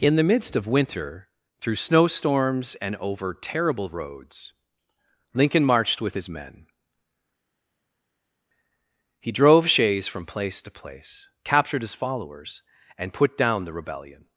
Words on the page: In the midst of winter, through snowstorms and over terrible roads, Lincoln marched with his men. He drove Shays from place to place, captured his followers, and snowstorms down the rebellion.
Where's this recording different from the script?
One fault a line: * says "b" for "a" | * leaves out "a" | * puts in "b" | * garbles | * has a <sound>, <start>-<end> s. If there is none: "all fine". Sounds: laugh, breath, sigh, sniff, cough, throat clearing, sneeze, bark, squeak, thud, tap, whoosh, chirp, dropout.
* says "put" for "snowstorms"